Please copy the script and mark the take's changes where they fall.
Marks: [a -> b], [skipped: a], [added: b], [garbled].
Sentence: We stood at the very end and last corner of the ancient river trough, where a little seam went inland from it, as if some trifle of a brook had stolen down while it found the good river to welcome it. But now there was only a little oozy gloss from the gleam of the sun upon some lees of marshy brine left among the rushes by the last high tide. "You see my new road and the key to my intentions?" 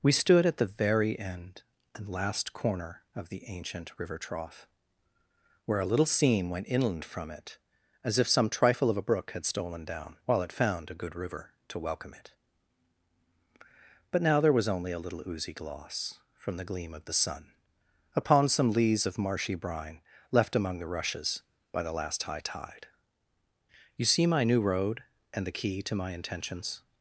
We stood at the very end and last corner of the ancient river trough, where a little seam went inland from it, as if some trifle of a brook had stolen down while it found [the -> a] good river to welcome it. But now there was only a little oozy gloss from the gleam of the sun upon some lees of marshy brine left among the rushes by the last high tide. "You see my new road and the key to my intentions?"